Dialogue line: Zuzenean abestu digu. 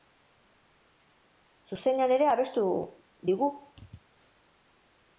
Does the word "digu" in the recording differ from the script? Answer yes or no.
no